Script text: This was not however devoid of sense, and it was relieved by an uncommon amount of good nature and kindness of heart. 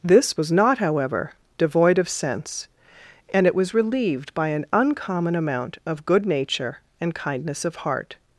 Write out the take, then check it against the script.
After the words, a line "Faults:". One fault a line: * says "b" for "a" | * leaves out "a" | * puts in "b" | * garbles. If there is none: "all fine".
This was not however devoid of sense, and it was relieved by an uncommon amount of good nature and kindness of heart.
Faults:
all fine